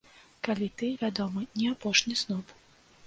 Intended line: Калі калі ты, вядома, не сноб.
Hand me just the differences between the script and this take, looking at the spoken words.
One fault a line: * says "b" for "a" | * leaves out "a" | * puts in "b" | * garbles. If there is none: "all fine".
* leaves out "калі"
* puts in "апошні"